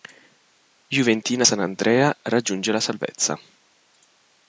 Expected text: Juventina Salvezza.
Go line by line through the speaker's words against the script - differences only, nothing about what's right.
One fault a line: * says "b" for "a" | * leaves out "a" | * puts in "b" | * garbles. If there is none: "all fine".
* puts in "Sant'Andrea raggiunge la"